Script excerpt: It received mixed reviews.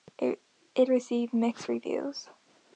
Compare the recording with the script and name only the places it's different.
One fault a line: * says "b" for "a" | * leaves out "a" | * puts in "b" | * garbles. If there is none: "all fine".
all fine